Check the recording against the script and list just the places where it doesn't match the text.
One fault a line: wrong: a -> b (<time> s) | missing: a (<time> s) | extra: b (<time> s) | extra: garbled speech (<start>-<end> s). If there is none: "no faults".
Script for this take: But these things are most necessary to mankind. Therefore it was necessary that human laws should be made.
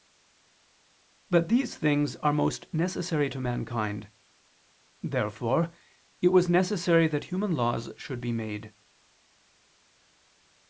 no faults